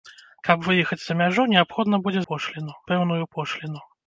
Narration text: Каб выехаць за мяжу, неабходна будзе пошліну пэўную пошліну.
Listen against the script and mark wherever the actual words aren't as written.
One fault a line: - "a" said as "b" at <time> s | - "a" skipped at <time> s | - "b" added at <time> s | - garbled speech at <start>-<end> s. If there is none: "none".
none